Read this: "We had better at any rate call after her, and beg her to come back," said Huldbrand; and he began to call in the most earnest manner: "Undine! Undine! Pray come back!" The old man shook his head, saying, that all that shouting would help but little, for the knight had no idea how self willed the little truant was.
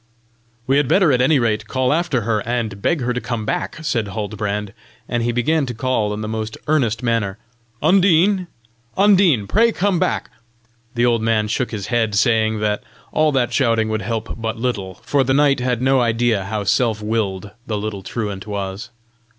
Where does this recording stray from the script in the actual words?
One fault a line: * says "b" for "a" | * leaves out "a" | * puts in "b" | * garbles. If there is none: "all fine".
all fine